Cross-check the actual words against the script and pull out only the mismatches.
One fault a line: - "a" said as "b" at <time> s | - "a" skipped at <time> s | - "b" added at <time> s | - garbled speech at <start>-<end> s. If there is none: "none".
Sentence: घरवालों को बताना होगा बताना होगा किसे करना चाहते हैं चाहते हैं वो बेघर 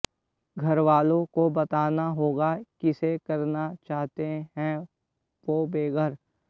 - "बताना होगा" skipped at 2.5 s
- "चाहते हैं" skipped at 4.8 s